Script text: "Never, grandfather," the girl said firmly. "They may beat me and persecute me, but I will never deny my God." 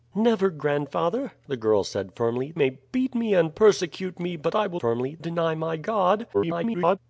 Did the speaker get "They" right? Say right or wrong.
wrong